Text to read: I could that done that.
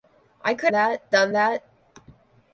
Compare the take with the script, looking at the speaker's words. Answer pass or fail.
pass